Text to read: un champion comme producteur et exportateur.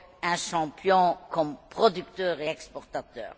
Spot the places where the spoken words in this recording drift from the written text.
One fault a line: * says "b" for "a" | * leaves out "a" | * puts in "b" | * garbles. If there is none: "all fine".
all fine